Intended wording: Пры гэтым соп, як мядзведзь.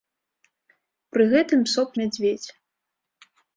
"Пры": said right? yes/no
yes